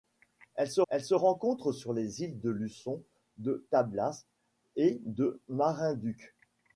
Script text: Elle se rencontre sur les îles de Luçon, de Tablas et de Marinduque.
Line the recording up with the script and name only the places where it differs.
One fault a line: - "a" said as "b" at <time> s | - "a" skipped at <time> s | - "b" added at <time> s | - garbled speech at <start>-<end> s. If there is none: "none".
- "elle se" added at 0.9 s